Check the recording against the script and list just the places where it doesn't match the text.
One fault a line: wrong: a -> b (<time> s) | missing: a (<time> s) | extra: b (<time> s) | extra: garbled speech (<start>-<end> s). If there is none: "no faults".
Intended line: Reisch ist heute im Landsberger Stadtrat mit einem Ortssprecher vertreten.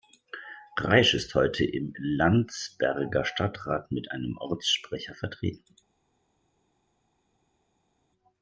no faults